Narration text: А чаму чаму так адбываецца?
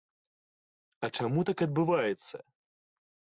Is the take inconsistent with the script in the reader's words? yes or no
yes